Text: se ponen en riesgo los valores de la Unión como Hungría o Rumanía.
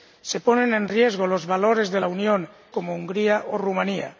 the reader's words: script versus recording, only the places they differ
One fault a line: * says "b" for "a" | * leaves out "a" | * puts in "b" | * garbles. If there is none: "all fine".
all fine